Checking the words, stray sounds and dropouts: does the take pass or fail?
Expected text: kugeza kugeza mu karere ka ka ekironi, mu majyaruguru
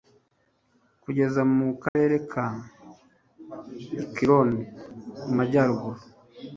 fail